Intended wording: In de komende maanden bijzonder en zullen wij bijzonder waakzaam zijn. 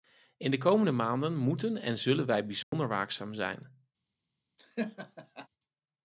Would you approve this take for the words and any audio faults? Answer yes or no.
no